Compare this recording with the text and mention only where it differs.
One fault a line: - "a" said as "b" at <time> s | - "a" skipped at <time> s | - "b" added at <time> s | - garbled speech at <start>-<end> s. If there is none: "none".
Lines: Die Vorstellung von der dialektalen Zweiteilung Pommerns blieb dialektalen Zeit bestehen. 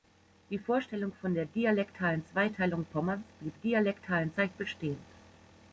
none